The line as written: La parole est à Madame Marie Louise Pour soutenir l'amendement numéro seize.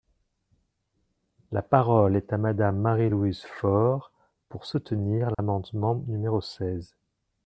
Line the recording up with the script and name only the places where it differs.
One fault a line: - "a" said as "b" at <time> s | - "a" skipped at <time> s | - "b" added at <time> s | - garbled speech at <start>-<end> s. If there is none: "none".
- "Fort" added at 3.6 s